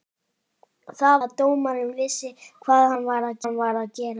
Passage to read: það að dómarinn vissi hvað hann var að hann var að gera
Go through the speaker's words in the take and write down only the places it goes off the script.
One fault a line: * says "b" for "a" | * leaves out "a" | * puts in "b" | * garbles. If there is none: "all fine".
all fine